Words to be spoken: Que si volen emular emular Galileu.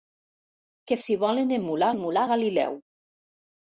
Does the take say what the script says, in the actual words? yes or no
yes